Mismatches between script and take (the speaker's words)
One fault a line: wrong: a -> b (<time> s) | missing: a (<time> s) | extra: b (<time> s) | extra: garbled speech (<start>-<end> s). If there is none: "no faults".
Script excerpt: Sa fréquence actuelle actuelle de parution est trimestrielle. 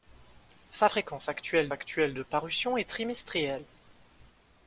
no faults